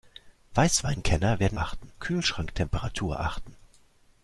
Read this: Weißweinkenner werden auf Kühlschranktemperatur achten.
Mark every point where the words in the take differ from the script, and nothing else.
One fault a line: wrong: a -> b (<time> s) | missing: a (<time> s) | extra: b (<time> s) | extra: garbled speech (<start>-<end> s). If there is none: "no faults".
wrong: auf -> achten (1.5 s)